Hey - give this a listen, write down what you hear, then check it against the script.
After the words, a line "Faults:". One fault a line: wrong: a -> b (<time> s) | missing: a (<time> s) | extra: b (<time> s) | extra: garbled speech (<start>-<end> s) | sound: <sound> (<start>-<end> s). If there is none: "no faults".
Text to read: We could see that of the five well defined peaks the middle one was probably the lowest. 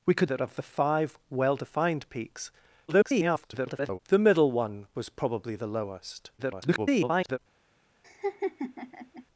We could that of the five well defined peaks [garbled] the middle one was probably the lowest. [garbled]
Faults:
missing: see (0.3 s)
extra: garbled speech (2.9-4.0 s)
extra: garbled speech (6.4-7.4 s)
sound: laugh (8.0-9.3 s)